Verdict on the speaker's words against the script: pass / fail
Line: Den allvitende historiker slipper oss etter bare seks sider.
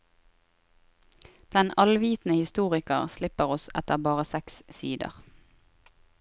pass